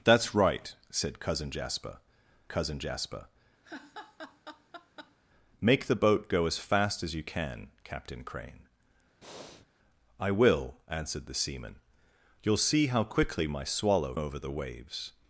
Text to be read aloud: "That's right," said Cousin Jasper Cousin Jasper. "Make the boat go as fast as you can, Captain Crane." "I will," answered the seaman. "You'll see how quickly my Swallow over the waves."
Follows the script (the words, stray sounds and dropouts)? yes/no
no